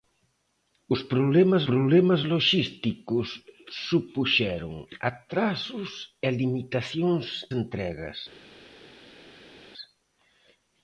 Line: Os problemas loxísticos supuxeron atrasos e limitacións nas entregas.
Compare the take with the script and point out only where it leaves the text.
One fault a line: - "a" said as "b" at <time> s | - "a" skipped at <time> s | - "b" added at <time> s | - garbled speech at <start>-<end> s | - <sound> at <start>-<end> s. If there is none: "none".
- "problemas" added at 1.7 s
- "nas" skipped at 7.2 s